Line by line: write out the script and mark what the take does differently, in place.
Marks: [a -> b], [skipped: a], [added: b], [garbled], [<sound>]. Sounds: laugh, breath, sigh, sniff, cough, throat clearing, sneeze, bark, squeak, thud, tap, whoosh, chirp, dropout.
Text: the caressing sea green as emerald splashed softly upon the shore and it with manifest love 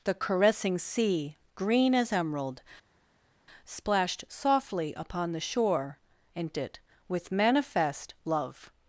the caressing sea green as emerald splashed softly upon the shore and it with manifest love